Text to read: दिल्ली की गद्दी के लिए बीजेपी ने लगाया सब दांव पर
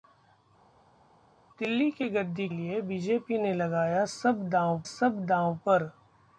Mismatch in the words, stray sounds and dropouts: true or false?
true